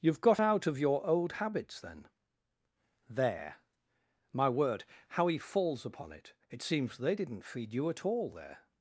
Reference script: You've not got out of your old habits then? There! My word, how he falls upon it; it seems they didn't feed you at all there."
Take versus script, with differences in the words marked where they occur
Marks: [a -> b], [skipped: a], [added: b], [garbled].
You've [skipped: not] got out of your old habits then? There! My word, how he falls upon it; it seems they didn't feed you at all there."